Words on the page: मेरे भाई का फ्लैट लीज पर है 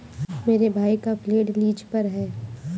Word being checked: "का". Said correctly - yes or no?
yes